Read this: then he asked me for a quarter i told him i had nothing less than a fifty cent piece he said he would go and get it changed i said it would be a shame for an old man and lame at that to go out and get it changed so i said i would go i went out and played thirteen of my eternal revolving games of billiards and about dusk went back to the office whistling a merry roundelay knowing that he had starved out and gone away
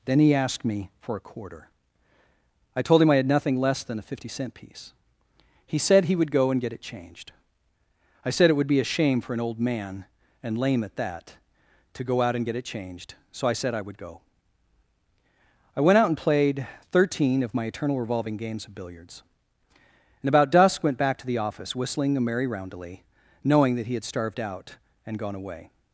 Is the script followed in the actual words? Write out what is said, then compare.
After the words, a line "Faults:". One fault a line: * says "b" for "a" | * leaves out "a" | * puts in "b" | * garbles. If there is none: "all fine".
then he asked me for a quarter i told him i had nothing less than a fifty cent piece he said he would go and get it changed i said it would be a shame for an old man and lame at that to go out and get it changed so i said i would go i went out and played thirteen of my eternal revolving games of billiards and about dusk went back to the office whistling a merry roundelay knowing that he had starved out and gone away
Faults:
all fine